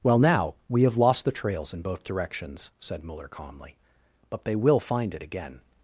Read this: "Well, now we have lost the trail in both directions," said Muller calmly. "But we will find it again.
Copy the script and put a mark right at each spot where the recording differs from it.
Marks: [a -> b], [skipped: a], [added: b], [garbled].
"Well, now we have lost the [trail -> trails] in both directions," said Muller calmly. "But [we -> they] will find it again.